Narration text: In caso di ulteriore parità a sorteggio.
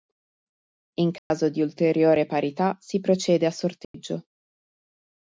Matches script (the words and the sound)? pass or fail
fail